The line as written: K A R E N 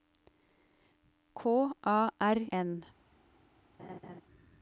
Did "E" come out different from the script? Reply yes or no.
yes